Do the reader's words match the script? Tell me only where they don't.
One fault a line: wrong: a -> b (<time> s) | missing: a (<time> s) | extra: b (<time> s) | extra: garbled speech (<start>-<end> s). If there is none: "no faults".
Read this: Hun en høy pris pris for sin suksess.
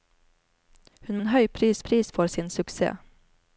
no faults